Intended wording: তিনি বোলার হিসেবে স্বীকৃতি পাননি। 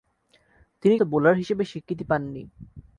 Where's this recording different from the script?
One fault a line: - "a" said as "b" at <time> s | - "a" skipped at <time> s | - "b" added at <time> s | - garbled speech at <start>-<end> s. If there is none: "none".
none